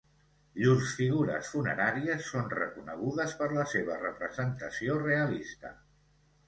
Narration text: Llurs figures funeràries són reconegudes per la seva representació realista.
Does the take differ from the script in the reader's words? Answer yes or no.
no